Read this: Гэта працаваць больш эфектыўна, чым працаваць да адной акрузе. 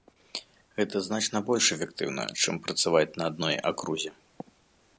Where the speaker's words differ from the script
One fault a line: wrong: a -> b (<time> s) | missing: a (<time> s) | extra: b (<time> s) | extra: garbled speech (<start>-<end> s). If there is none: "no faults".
wrong: працаваць -> значна (1.1 s)
wrong: да -> на (3.2 s)